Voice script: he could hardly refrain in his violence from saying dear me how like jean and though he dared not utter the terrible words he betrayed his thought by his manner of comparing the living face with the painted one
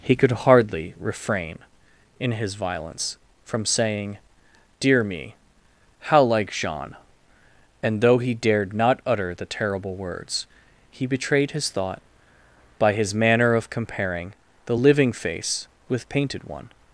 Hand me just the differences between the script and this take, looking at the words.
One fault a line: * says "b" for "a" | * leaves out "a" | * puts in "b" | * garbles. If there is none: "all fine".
* leaves out "the"